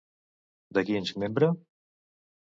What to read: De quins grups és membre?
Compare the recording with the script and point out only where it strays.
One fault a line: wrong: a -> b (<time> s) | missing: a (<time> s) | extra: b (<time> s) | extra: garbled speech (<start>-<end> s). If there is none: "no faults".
missing: grups (1.1 s)